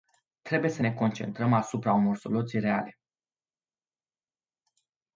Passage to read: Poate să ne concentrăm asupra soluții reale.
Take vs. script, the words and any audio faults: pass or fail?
fail